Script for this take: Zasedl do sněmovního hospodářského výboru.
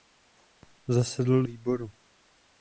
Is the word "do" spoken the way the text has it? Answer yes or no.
no